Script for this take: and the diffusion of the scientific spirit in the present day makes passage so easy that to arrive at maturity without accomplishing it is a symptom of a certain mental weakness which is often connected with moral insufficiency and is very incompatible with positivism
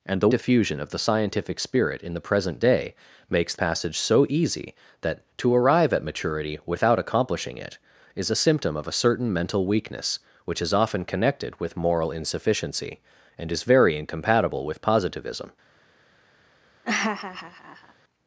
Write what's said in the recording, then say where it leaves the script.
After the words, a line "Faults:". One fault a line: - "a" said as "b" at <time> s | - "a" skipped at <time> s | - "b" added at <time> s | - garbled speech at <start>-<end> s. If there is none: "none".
and the diffusion of the scientific spirit in the present day makes passage so easy that to arrive at maturity without accomplishing it is a symptom of a certain mental weakness which is often connected with moral insufficiency and is very incompatible with positivism
Faults:
none